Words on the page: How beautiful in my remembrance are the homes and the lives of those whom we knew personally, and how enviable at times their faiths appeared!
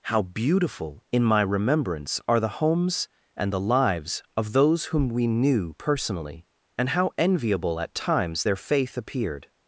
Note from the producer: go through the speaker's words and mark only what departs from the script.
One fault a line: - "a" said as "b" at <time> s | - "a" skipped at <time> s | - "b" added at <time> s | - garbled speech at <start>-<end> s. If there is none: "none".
- "faiths" said as "faith" at 8.6 s